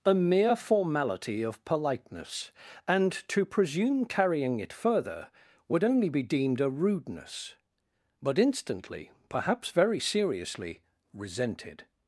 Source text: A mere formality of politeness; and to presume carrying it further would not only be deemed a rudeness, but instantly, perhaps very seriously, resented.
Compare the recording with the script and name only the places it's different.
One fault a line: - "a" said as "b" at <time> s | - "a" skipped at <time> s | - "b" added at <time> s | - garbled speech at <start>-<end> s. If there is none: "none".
- "not" skipped at 5.8 s